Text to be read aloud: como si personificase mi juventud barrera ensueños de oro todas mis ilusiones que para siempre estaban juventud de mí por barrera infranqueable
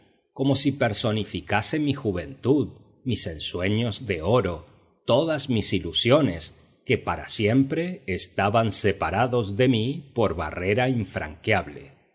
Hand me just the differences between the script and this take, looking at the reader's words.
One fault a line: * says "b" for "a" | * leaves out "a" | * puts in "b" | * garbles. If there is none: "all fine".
* says "mis" for "barrera"
* says "separados" for "juventud"